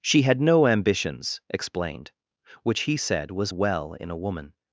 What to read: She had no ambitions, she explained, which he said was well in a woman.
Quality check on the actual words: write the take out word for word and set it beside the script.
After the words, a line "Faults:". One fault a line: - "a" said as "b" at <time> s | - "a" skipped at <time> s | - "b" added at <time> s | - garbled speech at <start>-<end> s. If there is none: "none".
She had no ambitions, explained, which he said was well in a woman.
Faults:
- "she" skipped at 1.4 s